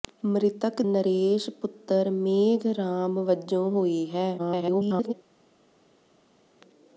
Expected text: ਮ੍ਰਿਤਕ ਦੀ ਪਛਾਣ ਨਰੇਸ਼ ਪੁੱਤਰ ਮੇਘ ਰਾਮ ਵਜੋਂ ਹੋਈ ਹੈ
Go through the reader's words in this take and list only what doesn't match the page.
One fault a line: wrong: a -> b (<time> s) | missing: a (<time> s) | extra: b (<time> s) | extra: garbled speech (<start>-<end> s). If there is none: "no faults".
missing: ਦੀ ਪਛਾਣ (0.8 s)
extra: garbled speech (4.4-5.1 s)